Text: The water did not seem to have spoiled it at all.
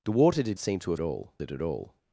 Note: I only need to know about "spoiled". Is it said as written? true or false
false